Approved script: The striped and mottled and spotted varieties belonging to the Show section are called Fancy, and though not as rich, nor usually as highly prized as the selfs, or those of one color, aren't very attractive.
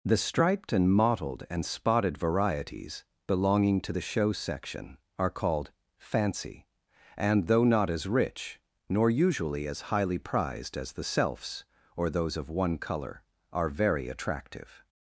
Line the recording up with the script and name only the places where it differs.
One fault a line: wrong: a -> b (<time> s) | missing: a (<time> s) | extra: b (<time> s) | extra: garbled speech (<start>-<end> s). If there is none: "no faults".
wrong: aren't -> are (13.5 s)